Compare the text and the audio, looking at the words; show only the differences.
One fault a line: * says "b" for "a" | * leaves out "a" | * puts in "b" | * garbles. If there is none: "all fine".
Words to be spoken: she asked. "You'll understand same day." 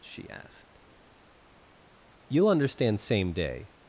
all fine